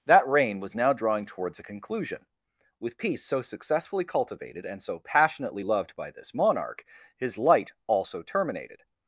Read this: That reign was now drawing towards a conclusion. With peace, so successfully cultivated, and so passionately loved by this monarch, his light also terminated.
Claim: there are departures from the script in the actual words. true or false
false